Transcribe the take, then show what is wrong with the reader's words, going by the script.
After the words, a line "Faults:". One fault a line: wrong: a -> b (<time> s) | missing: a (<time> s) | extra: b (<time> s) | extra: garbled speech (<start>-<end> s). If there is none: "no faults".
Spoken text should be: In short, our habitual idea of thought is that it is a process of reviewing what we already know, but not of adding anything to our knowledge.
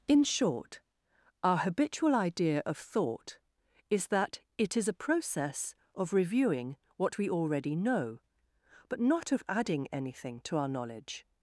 In short, our habitual idea of thought is that it is a process of reviewing what we already know, but not of adding anything to our knowledge.
Faults:
no faults